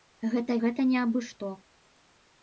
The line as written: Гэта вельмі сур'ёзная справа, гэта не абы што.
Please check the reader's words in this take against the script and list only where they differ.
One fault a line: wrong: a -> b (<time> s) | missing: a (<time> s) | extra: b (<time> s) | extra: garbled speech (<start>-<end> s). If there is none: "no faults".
missing: вельмі сур'ёзная справа (0.5 s)